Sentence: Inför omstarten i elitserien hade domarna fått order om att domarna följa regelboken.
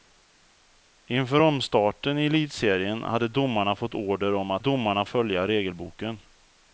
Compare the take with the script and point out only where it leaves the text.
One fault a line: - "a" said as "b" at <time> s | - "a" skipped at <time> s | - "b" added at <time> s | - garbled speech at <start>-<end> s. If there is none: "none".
none